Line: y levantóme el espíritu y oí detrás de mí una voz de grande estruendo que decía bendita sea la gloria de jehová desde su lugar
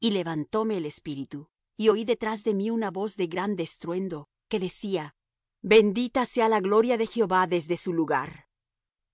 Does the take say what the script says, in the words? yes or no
yes